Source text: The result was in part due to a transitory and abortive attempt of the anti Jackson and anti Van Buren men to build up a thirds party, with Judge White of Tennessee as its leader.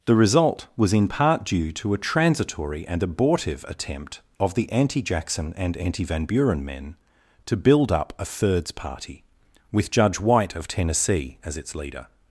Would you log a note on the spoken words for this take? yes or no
no